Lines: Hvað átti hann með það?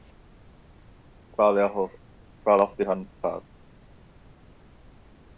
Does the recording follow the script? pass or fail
fail